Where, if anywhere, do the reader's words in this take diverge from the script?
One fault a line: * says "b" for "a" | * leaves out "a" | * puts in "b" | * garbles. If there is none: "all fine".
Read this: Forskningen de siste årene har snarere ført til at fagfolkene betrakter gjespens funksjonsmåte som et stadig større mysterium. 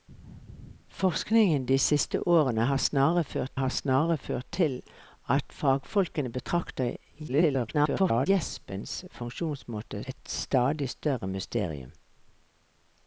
* puts in "har snarere ført"
* garbles
* leaves out "som"